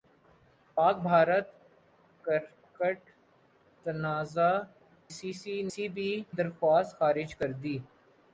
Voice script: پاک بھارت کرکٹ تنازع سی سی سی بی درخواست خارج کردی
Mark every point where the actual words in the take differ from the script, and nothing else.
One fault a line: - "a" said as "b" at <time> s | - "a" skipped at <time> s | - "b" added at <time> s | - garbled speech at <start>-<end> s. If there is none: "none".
none